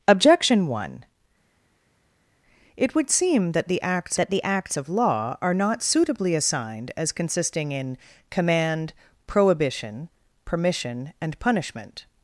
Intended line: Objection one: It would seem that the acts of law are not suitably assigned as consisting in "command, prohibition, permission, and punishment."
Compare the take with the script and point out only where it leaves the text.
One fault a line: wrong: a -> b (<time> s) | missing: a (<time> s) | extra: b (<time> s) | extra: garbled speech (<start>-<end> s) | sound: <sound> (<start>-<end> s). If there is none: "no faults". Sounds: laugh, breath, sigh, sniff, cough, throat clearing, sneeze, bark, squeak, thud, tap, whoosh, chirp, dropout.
extra: that the acts (4.2 s)